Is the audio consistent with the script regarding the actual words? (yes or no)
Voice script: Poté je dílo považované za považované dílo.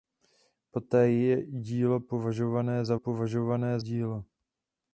yes